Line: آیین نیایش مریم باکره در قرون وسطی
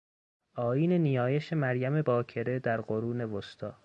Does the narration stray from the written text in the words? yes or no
no